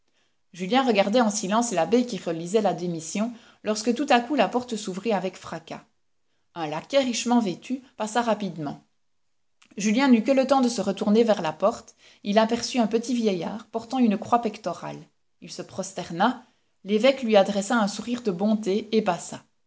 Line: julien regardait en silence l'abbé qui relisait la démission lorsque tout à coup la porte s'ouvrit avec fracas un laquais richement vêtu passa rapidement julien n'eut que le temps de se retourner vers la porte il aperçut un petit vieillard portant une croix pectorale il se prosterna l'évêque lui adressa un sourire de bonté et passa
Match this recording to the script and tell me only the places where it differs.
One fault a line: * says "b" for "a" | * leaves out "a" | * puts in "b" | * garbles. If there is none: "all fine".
all fine